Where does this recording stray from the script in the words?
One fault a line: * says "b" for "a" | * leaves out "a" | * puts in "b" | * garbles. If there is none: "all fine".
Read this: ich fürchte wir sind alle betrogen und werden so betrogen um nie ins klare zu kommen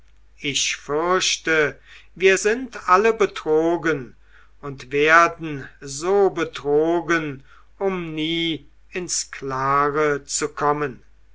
all fine